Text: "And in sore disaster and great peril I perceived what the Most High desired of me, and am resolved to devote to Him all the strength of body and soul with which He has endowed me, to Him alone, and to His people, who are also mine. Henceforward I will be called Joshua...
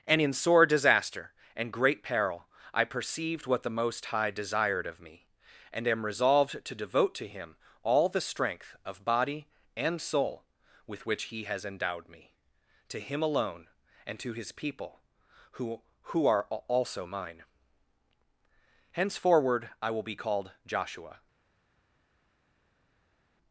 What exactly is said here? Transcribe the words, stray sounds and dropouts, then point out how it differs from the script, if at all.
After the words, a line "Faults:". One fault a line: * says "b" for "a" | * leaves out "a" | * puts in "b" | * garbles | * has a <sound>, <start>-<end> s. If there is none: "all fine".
"And in sore disaster and great peril I perceived what the Most High desired of me, and am resolved to devote to Him all the strength of body and soul with which He has endowed me, to Him alone, and to His people, who who are also mine. Henceforward I will be called Joshua...
Faults:
* puts in "who"